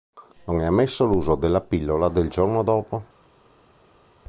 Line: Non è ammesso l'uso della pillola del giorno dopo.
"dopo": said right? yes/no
yes